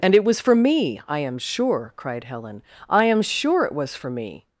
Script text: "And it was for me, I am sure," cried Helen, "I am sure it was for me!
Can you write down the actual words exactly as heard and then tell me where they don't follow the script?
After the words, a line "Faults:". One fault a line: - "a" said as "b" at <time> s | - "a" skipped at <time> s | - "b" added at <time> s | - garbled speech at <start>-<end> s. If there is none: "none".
"And it was for me, I am sure," cried Helen, "I am sure it was for me!
Faults:
none